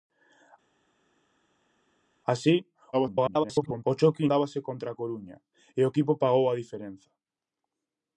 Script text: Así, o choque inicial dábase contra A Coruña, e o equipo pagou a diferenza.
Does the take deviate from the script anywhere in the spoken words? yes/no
yes